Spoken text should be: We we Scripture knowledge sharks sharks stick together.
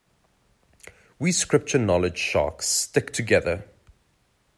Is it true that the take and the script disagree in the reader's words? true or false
true